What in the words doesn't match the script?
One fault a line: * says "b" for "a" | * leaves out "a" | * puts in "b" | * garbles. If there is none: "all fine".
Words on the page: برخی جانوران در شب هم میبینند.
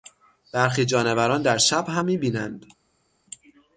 all fine